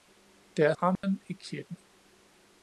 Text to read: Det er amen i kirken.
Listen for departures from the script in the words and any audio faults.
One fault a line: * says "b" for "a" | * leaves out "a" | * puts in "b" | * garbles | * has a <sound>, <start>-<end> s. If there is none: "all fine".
* has a dropout, 1.0-1.0 s